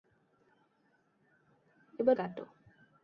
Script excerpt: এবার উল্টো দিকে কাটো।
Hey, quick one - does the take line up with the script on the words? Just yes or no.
no